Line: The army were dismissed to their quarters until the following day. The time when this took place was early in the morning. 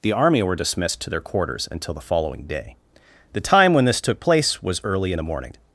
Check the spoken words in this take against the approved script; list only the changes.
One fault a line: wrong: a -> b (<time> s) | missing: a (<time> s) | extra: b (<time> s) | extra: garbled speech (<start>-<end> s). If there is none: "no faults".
no faults